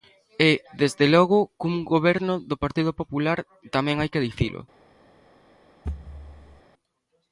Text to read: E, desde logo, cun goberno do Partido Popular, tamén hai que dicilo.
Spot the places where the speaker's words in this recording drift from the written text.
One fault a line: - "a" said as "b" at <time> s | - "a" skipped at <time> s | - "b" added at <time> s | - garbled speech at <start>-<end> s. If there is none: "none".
none